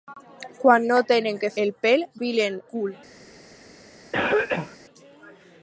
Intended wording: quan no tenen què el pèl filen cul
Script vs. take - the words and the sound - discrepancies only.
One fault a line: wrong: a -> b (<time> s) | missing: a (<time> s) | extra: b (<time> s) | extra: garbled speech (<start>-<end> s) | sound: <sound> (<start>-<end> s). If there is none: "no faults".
sound: cough (4.1-4.8 s)